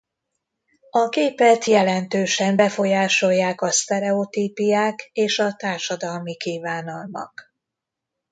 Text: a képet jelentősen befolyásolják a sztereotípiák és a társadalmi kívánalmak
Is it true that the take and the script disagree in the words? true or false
false